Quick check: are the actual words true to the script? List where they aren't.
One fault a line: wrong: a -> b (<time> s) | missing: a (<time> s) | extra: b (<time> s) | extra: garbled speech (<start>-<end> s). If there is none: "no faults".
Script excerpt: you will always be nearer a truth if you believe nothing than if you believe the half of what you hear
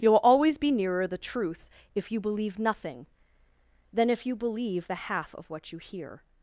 wrong: a -> the (1.1 s)